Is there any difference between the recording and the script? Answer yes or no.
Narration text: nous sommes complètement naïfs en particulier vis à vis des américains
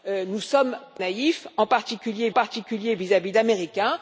yes